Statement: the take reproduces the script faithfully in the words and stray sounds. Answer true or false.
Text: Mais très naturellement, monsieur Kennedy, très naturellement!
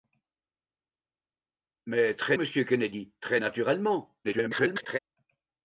false